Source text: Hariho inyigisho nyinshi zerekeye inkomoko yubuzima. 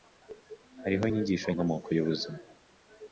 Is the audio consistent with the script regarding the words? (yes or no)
no